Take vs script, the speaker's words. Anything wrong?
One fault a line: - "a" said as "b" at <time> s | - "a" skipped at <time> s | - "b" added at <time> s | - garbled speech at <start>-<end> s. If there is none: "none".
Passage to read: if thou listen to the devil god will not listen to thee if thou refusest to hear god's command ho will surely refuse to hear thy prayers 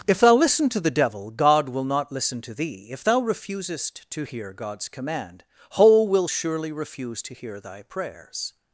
none